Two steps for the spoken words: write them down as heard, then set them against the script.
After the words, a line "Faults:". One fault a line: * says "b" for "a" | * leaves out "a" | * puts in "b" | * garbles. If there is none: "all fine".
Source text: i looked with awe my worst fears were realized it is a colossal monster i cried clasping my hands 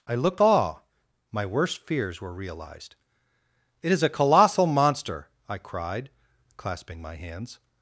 i looked awe my worst fears were realized it is a colossal monster i cried clasping my hands
Faults:
* leaves out "with"